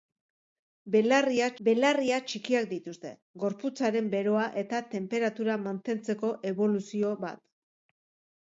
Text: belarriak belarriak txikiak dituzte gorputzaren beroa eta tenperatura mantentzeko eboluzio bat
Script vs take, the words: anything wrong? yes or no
no